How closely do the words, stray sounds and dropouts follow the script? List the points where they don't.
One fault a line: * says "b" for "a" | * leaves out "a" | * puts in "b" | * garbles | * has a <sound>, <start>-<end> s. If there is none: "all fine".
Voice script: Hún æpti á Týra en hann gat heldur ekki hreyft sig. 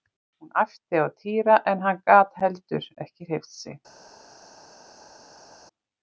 all fine